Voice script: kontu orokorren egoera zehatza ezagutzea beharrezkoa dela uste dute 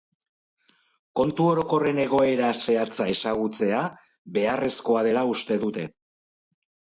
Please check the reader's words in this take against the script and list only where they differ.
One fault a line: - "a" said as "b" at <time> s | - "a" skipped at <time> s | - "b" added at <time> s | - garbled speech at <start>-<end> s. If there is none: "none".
none